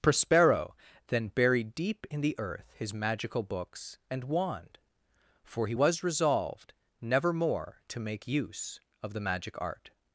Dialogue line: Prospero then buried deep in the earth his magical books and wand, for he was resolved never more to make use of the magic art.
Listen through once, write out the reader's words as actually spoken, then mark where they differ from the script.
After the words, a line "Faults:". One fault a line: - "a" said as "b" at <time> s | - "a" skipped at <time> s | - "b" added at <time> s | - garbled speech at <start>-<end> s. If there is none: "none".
Prospero then buried deep in the earth his magical books and wand, for he was resolved never more to make use of the magic art.
Faults:
none